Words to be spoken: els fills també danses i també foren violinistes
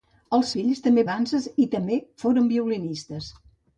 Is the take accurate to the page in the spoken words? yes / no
yes